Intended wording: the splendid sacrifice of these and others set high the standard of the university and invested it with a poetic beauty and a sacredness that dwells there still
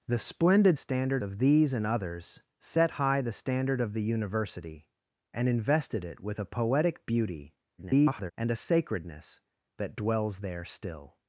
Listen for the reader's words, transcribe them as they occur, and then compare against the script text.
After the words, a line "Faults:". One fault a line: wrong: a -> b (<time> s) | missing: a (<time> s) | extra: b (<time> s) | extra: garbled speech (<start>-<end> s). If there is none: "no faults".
the splendid standard of these and others set high the standard of the university and invested it with a poetic beauty [garbled] and a sacredness that dwells there still
Faults:
wrong: sacrifice -> standard (0.7 s)
extra: garbled speech (7.8-8.3 s)